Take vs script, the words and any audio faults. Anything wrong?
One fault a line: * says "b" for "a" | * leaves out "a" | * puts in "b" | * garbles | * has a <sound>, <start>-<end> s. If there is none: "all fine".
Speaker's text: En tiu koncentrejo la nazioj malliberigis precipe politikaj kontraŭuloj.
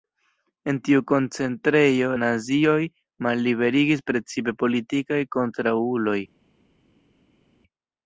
* leaves out "la"